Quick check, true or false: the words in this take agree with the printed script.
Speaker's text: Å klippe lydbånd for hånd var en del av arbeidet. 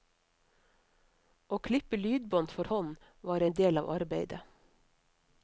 true